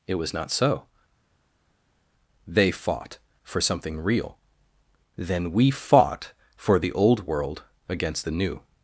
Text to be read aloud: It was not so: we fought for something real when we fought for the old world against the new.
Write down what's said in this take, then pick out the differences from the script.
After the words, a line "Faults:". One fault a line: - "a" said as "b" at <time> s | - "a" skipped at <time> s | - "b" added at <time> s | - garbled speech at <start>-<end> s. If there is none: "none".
It was not so: they fought for something real then we fought for the old world against the new.
Faults:
- "we" said as "they" at 2.5 s
- "when" said as "then" at 5.2 s